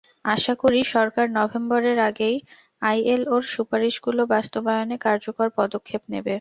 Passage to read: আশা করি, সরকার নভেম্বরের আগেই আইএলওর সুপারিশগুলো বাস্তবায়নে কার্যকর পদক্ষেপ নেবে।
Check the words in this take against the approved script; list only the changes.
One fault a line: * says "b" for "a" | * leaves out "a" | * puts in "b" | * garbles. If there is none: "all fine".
all fine